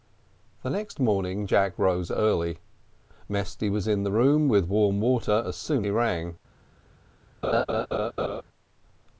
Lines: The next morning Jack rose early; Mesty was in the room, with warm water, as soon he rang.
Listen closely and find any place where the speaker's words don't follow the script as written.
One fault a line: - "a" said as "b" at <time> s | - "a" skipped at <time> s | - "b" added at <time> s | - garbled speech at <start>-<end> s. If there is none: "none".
none